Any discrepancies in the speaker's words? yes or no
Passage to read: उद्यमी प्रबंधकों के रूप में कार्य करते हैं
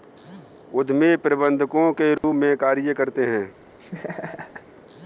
no